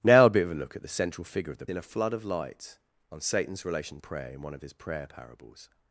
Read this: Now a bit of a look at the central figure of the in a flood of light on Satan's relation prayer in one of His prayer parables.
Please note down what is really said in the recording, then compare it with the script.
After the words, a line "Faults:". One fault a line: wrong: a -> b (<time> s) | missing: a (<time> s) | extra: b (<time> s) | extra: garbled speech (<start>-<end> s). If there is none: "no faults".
Now a bit of a look at the central figure of the in a flood of light on Satan's relation prayer in one of His prayer parables.
Faults:
no faults